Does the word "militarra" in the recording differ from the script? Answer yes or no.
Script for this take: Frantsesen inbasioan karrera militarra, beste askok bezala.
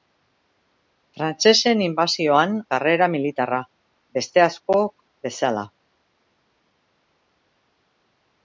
no